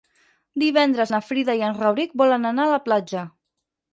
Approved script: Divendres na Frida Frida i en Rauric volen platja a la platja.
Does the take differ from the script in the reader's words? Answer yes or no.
yes